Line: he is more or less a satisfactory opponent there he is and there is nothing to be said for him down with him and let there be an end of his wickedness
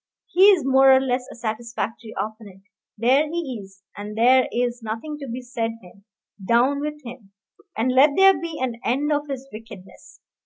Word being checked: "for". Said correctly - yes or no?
no